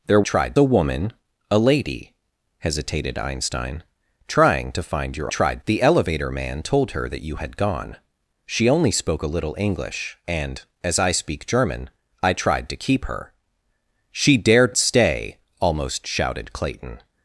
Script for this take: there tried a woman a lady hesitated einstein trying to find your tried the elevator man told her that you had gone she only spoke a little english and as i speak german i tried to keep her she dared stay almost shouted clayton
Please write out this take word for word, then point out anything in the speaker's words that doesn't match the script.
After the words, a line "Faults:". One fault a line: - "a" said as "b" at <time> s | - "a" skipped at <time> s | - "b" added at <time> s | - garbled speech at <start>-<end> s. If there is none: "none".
there tried a woman a lady hesitated einstein trying to find your tried the elevator man told her that you had gone she only spoke a little english and as i speak german i tried to keep her she dared stay almost shouted clayton
Faults:
none